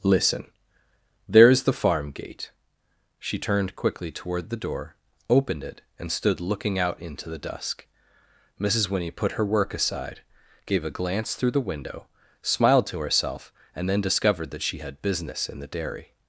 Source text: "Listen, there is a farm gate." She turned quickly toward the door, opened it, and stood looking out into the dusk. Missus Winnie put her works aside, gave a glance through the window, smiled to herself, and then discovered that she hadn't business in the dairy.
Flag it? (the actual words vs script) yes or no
yes